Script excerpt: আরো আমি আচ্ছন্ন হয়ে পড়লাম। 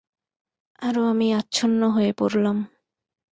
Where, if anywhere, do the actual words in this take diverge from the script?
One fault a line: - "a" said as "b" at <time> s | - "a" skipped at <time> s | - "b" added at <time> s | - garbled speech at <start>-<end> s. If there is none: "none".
none